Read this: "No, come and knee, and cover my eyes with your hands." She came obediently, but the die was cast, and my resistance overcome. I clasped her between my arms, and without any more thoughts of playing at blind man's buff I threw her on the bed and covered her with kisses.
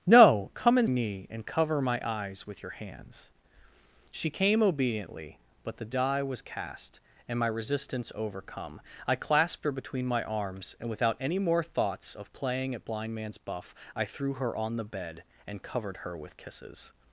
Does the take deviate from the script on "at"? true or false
false